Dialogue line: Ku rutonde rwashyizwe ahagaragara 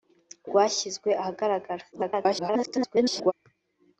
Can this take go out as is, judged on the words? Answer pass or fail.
fail